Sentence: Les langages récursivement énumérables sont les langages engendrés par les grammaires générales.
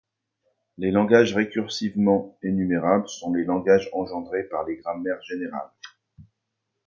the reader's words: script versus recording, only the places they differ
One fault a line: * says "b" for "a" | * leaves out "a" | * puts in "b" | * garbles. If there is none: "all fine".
all fine